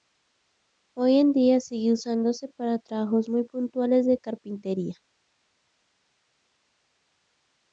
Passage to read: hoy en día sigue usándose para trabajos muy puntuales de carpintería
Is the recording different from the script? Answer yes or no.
no